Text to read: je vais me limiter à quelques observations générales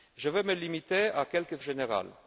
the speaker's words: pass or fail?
fail